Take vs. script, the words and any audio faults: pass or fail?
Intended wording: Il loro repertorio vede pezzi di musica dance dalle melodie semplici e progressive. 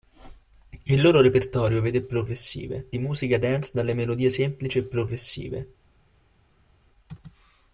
fail